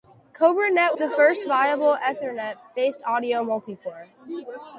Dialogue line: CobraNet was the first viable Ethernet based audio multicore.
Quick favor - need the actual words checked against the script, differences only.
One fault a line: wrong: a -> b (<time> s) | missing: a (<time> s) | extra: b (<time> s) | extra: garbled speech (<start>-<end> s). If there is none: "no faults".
missing: was (0.9 s)